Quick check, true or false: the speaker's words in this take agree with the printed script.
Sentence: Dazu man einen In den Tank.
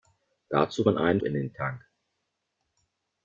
true